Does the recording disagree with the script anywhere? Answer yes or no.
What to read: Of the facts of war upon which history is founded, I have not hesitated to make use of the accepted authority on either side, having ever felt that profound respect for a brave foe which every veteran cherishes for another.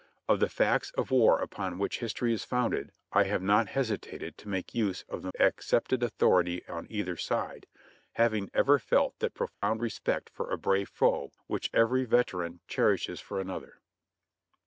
no